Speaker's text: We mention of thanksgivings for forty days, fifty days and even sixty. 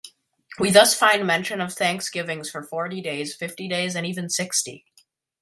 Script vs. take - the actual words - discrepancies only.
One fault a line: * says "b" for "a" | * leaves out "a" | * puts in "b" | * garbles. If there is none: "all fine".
* puts in "thus find"